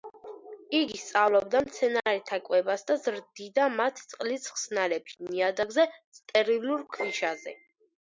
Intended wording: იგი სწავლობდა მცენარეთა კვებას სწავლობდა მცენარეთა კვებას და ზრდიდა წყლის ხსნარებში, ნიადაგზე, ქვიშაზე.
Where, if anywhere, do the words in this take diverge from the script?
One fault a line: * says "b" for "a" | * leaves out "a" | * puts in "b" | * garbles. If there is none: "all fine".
* leaves out "სწავლობდა მცენარეთა კვებას"
* puts in "მათ"
* puts in "სტერილურ"